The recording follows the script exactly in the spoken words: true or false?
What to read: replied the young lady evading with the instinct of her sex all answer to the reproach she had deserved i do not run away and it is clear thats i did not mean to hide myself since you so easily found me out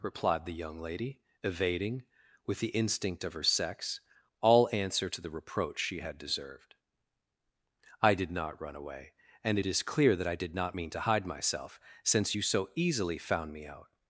false